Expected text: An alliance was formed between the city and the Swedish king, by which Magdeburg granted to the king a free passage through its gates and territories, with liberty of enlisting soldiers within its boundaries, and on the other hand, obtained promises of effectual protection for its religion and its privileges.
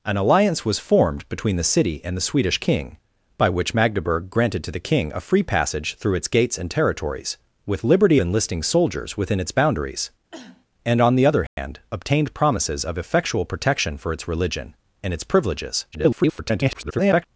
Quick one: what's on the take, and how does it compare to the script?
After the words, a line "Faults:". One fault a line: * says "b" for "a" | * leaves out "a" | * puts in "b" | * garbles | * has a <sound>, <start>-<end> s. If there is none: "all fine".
An alliance was formed between the city and the Swedish king, by which Magdeburg granted to the king a free passage through its gates and territories, with liberty enlisting soldiers within its boundaries, and on the other hand, obtained promises of effectual protection for its religion and its privileges. [garbled]
Faults:
* leaves out "of"
* has a cough, 10.3-10.7 s
* has a dropout, 11.5-11.6 s
* garbles